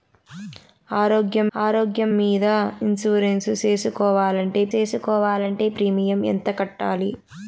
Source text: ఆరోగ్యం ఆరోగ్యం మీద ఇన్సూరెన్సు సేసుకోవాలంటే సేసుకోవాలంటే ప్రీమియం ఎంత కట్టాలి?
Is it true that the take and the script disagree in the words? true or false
false